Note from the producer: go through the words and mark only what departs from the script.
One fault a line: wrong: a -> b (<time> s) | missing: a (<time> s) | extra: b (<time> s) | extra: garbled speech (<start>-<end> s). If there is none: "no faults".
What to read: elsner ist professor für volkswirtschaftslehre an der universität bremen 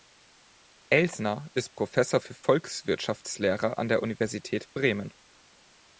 no faults